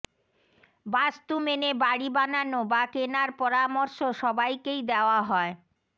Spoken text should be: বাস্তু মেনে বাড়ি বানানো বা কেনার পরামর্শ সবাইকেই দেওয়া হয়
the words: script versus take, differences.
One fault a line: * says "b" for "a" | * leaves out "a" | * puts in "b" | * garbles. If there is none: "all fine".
all fine